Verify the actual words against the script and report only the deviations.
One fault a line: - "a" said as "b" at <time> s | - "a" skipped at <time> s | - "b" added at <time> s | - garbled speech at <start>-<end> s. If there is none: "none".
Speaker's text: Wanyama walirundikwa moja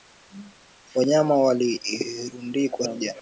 none